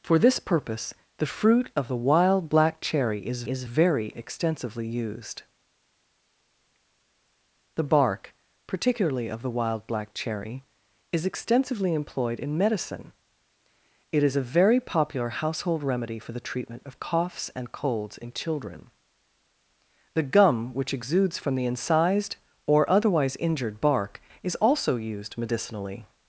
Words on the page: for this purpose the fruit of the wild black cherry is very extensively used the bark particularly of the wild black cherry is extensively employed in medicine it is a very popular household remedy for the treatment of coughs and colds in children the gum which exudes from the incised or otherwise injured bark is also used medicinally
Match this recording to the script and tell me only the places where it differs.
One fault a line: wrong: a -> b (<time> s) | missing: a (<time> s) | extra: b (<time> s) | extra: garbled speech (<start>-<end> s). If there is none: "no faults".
extra: is (3.5 s)